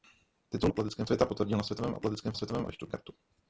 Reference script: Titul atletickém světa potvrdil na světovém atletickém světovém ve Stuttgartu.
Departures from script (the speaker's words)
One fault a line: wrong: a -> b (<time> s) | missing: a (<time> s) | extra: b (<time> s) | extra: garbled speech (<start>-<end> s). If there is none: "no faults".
no faults